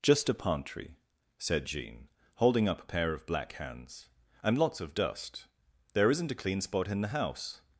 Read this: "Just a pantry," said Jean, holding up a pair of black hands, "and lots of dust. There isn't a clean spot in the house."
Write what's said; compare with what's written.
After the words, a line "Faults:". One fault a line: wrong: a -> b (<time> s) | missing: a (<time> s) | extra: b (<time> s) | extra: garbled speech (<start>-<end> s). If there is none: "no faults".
"Just a pantry," said Jean, holding up a pair of black hands, "and lots of dust. There isn't a clean spot in the house."
Faults:
no faults